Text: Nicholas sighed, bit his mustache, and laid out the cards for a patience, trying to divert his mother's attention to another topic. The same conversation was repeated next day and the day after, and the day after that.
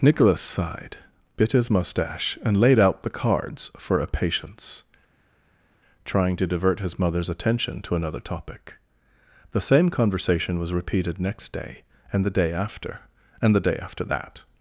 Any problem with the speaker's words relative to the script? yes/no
no